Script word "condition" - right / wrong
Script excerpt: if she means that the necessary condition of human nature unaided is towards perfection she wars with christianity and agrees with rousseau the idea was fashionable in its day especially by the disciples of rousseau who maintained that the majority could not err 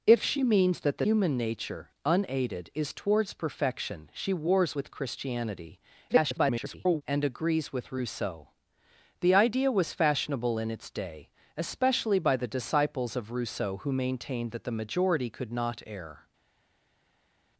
wrong